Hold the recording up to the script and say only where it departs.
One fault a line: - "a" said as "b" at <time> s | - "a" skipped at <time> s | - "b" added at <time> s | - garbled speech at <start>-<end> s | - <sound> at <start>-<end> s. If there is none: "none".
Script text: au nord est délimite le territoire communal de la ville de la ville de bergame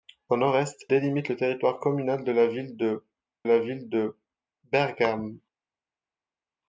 none